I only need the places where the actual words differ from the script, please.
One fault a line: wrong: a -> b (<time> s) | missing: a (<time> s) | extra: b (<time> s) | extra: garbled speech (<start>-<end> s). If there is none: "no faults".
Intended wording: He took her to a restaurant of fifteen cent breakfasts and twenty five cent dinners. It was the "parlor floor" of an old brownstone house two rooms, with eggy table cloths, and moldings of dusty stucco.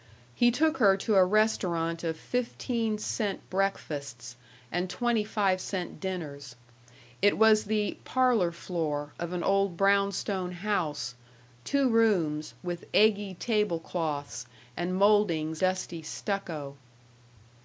missing: of (15.6 s)